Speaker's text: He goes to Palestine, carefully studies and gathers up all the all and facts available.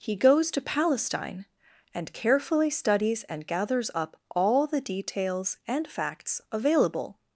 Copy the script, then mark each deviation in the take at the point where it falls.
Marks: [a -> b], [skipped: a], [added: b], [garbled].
He goes to Palestine, [added: and] carefully studies and gathers up all the [all -> details] and facts available.